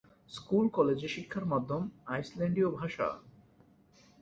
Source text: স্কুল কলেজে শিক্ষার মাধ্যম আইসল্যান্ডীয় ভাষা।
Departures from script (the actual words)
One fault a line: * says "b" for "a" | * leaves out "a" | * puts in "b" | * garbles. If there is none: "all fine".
all fine